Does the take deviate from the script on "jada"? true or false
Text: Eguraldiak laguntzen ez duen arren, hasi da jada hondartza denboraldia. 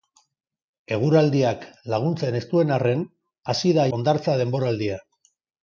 true